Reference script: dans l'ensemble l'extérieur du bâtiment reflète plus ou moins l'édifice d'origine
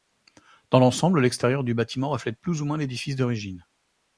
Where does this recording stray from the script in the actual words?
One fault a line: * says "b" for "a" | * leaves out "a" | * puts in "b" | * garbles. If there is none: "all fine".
all fine